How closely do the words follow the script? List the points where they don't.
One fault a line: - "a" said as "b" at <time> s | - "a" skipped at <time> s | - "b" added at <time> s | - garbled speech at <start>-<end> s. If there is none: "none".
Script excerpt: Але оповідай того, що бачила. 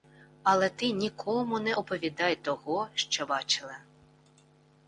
- "ти нікому не" added at 0.7 s